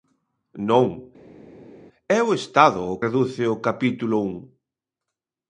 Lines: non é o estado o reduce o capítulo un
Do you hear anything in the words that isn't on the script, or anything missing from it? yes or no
no